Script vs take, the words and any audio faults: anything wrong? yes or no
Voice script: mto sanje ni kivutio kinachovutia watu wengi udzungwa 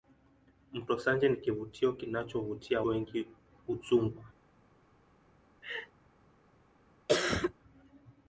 yes